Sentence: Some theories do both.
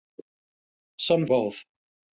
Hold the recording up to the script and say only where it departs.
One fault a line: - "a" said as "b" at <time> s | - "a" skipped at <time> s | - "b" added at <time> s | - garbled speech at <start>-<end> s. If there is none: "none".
- "theories do" skipped at 1.3 s